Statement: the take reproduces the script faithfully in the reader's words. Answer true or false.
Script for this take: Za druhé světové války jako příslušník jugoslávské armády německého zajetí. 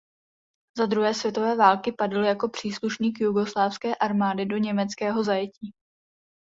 false